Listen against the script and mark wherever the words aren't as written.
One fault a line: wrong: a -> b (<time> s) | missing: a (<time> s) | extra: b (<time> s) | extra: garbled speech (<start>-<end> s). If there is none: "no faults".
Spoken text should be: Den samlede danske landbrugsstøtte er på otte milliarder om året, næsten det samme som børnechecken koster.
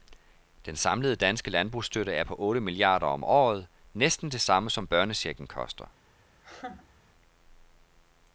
no faults